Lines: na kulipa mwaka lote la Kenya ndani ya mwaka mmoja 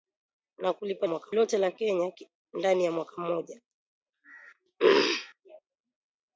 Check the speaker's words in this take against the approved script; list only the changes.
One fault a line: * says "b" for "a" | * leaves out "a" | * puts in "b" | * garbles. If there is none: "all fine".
all fine